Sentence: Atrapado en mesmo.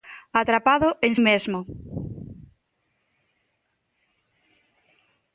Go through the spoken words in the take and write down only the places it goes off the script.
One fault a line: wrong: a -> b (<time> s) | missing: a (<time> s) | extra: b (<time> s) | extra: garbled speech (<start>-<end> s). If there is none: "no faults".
no faults